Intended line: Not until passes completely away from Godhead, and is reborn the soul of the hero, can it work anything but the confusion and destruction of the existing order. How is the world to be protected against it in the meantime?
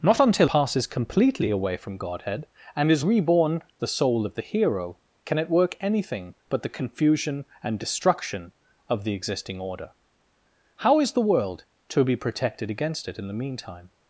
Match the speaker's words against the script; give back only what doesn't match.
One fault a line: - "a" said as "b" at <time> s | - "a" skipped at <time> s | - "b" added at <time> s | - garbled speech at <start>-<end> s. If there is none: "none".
none